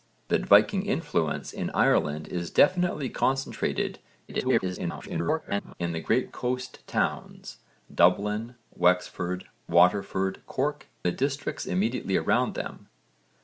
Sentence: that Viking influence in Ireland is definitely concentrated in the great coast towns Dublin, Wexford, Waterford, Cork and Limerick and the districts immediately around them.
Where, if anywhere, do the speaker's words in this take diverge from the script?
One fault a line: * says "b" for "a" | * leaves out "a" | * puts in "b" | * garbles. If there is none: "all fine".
* garbles
* leaves out "and Limerick and"